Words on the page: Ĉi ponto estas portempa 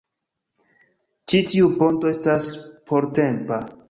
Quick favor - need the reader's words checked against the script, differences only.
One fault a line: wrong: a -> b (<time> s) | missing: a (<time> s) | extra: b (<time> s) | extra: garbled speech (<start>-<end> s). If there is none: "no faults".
extra: tiu (1.5 s)